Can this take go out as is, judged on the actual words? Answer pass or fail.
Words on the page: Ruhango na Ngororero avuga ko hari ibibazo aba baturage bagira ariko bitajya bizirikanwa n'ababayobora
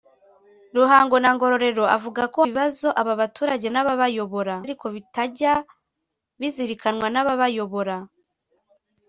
fail